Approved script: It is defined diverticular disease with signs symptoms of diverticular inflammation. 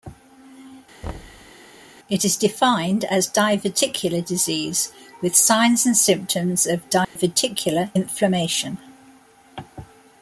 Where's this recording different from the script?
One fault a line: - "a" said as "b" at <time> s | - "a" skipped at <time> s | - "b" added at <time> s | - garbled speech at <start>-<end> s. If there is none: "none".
- "as" added at 3.0 s
- "and" added at 5.8 s